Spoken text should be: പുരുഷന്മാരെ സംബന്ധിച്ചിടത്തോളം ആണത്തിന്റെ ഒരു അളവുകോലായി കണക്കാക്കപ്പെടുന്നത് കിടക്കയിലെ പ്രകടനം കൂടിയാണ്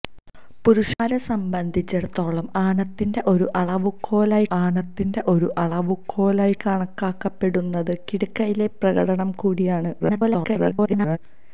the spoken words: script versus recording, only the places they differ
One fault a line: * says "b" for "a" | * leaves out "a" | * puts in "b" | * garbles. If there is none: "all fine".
* puts in "ആണത്തിന്റെ ഒരു അളവുകോലായി"
* garbles